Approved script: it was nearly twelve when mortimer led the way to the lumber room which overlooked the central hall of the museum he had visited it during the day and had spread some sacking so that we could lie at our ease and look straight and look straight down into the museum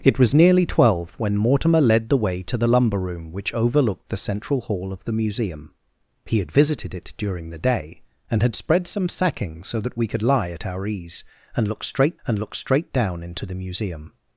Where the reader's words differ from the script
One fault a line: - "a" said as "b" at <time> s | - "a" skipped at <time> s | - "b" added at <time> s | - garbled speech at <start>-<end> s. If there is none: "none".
none